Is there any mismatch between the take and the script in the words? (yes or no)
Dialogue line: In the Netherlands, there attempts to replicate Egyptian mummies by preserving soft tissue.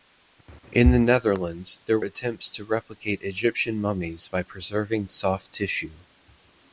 no